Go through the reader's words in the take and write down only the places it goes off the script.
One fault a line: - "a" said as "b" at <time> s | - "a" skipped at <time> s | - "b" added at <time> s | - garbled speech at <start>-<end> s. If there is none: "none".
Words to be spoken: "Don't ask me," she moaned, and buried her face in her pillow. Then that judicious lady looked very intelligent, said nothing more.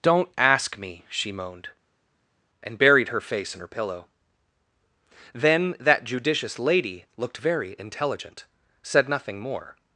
none